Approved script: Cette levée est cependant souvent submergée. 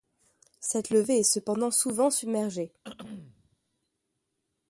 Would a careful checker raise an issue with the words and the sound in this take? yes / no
yes